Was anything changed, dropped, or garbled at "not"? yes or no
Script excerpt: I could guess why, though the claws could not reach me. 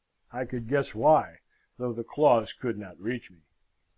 no